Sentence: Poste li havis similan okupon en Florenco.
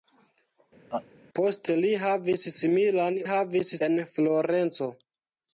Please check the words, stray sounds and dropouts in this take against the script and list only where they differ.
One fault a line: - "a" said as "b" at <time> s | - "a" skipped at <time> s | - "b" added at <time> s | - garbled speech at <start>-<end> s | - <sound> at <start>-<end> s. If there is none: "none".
- laugh at 0.9-1.1 s
- "okupon" said as "havis" at 3.3 s